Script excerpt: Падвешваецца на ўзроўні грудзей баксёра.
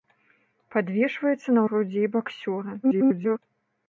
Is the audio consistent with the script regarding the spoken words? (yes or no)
no